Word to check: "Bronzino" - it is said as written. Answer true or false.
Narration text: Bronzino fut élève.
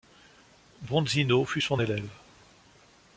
true